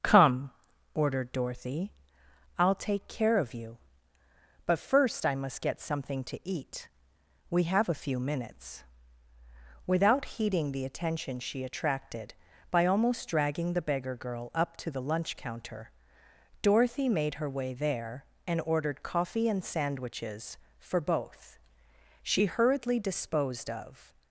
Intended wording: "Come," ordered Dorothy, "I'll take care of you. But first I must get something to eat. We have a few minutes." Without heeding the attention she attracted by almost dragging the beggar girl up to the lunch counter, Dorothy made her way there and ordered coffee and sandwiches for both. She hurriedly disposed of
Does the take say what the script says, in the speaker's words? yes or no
yes